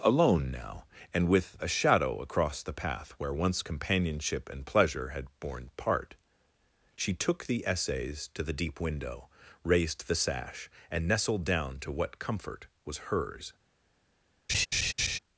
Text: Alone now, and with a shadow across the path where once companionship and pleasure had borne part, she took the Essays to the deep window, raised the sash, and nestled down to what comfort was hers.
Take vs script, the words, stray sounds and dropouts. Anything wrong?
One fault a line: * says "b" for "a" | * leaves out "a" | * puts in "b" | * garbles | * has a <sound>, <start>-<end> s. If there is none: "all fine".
* has a laugh, 14.5-15.2 s